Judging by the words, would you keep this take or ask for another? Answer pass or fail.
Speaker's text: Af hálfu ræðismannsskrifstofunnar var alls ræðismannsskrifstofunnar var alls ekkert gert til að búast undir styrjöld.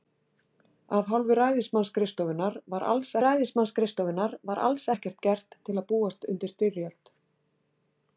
pass